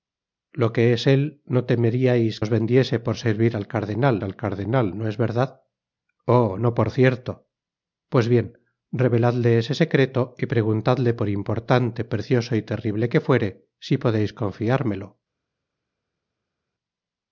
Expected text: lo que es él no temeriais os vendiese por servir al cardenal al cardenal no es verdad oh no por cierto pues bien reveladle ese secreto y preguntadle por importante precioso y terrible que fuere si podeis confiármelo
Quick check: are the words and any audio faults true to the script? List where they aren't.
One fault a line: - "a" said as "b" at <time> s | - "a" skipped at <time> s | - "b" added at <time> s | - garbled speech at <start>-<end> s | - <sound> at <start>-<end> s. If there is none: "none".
none